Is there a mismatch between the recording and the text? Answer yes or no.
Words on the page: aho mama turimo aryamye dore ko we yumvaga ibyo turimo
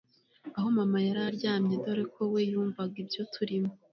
yes